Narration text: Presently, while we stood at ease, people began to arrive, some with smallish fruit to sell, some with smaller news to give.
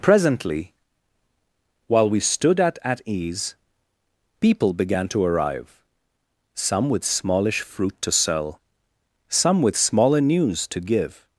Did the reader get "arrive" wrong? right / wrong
right